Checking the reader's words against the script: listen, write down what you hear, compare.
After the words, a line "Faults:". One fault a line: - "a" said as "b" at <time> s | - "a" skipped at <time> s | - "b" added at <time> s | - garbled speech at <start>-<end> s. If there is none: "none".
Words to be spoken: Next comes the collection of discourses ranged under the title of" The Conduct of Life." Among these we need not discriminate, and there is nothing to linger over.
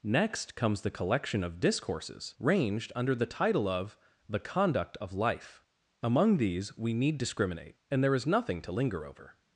Next comes the collection of discourses ranged under the title of" The Conduct of Life." Among these we need discriminate, and there is nothing to linger over.
Faults:
- "not" skipped at 7.2 s